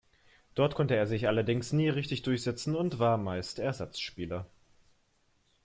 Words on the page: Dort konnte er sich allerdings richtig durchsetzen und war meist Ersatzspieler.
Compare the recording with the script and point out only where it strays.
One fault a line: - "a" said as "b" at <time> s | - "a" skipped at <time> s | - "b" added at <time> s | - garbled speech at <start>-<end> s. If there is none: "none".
- "nie" added at 1.7 s